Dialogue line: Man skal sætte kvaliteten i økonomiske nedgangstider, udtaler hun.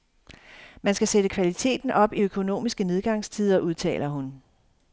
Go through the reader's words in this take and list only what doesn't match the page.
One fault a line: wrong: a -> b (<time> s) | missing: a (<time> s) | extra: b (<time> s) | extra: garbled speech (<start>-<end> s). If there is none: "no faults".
extra: op (1.9 s)